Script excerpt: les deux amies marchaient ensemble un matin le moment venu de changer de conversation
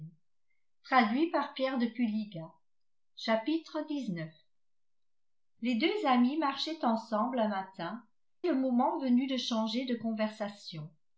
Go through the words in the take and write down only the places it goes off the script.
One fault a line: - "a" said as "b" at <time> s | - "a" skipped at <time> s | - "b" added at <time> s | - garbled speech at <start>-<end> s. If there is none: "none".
none